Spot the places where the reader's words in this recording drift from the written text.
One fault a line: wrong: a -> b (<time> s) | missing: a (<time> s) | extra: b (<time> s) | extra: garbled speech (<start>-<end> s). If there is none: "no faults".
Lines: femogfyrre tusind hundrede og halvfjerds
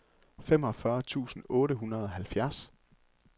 extra: otte (1.5 s)